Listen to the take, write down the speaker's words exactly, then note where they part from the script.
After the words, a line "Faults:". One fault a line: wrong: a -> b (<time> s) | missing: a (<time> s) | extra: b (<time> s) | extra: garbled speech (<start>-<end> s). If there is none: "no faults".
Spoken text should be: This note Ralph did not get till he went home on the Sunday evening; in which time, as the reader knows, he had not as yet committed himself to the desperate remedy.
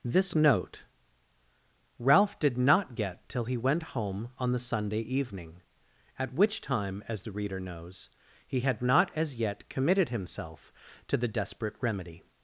This note Ralph did not get till he went home on the Sunday evening; at which time, as the reader knows, he had not as yet committed himself to the desperate remedy.
Faults:
wrong: in -> at (6.2 s)